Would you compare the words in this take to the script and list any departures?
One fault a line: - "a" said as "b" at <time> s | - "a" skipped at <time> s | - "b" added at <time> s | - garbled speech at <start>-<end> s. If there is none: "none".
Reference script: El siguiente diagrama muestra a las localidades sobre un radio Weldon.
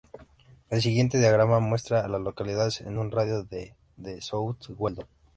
- "sobre" said as "en" at 2.8 s
- "de de South" added at 3.4 s